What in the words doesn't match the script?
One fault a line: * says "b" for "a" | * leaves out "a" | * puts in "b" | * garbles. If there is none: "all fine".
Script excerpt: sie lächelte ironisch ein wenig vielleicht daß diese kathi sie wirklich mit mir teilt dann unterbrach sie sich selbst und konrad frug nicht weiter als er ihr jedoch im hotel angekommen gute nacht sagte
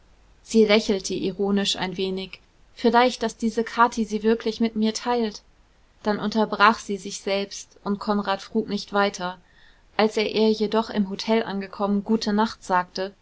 all fine